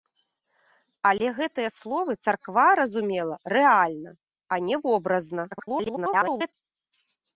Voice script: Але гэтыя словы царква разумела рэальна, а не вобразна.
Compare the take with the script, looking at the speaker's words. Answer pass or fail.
fail